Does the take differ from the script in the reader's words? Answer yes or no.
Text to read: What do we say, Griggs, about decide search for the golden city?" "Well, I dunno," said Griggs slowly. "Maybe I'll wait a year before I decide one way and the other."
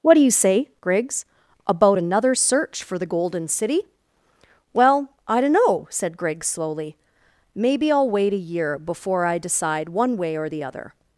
yes